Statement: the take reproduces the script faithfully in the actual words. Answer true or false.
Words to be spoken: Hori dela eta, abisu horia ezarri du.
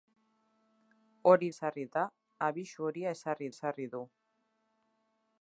false